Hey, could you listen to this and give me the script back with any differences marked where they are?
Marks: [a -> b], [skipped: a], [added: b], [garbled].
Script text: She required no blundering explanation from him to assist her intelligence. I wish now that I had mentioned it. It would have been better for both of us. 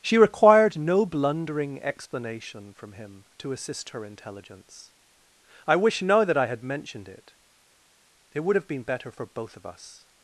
She required no blundering explanation from him to assist her intelligence. I wish now that I had mentioned it. It would have been better for both of us.